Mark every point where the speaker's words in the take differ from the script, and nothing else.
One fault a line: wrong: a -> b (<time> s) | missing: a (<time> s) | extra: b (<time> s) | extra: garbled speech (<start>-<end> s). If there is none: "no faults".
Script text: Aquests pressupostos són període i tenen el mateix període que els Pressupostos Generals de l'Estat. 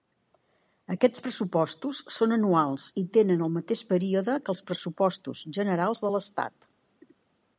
wrong: període -> anuals (2.4 s)